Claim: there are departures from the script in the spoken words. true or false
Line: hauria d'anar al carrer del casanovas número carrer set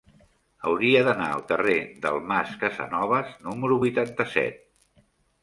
true